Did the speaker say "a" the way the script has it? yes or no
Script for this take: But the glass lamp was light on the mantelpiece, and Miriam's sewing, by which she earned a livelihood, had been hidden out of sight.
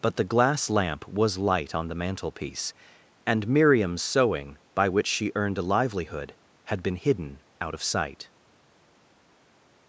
yes